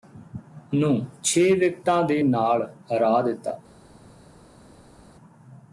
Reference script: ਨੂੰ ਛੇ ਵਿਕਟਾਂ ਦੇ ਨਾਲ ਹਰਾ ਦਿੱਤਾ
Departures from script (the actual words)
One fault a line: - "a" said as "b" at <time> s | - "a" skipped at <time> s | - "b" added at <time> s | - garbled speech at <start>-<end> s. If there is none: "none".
none